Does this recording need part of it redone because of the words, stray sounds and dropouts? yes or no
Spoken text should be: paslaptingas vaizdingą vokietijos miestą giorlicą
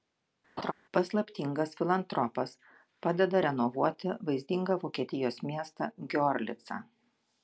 yes